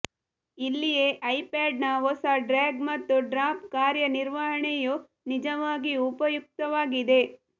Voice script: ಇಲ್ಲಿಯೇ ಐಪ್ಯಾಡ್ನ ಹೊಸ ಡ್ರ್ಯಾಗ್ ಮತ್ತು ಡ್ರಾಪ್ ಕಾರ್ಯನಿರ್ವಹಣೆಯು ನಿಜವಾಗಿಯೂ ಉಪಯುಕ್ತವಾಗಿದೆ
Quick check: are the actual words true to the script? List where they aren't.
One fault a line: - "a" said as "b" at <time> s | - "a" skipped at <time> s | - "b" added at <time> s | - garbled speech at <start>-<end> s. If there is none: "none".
none